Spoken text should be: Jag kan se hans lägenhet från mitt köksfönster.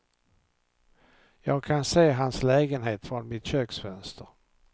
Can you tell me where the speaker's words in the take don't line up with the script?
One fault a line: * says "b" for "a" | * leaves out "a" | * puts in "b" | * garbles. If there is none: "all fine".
all fine